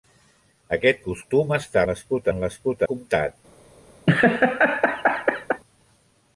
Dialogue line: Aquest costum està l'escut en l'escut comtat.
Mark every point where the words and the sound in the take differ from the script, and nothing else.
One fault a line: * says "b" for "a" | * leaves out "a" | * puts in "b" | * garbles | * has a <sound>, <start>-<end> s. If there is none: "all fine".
* has a laugh, 4.1-5.6 s